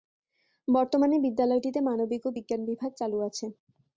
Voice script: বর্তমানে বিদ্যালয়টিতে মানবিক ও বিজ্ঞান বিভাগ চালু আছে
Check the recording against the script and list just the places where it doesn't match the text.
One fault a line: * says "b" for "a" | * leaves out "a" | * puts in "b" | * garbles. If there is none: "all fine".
all fine